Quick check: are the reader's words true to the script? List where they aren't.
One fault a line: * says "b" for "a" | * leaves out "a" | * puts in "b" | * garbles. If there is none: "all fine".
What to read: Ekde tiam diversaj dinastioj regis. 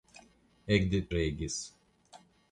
* leaves out "tiam diversaj dinastioj"